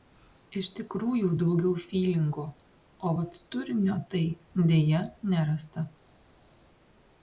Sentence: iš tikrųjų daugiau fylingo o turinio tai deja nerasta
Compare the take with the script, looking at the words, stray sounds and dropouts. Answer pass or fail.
fail